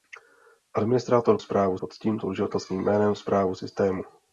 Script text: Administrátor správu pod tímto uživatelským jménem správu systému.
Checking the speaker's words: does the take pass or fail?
pass